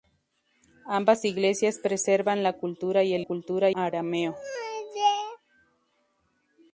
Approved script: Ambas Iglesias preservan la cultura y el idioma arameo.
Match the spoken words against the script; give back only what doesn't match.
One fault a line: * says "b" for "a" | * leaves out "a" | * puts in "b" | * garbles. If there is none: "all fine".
* says "cultura" for "idioma"